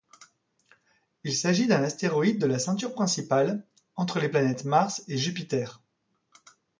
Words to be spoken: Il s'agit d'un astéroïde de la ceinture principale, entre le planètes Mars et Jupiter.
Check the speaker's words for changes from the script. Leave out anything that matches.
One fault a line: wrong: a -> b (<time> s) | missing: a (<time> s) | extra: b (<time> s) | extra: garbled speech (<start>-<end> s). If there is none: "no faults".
wrong: le -> les (4.2 s)